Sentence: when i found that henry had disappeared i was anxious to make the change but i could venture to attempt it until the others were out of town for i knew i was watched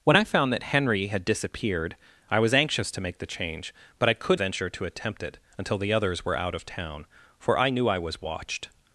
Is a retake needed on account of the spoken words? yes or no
no